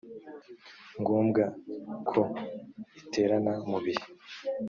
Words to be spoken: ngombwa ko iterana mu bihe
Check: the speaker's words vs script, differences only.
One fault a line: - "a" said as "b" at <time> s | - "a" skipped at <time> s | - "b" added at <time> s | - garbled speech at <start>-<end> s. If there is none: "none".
none